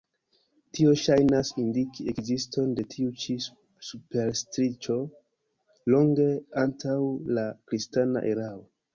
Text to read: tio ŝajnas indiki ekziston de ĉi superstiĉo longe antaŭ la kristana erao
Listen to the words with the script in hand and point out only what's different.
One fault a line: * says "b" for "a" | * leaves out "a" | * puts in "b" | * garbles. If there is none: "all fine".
* puts in "tiu"